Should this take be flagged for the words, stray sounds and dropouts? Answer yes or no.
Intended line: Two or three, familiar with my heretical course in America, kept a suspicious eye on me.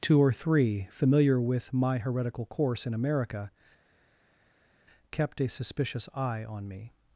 no